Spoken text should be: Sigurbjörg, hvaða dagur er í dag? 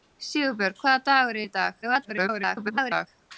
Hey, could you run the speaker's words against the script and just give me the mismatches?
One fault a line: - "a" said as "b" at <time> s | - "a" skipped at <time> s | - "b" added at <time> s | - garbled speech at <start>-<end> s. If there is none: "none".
- garbled speech at 1.8-3.1 s